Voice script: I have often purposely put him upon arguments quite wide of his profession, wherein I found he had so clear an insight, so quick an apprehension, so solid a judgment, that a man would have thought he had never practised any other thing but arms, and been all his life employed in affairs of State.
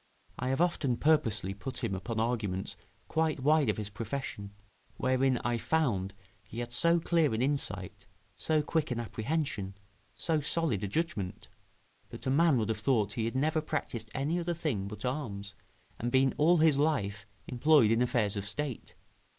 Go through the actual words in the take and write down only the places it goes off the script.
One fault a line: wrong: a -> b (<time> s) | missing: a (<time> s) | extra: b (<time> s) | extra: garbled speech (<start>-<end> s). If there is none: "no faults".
no faults